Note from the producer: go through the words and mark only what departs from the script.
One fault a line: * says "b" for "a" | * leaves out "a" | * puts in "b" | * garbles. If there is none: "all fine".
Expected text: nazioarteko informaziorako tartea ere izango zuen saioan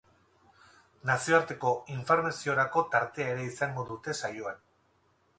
* says "dute" for "zuen"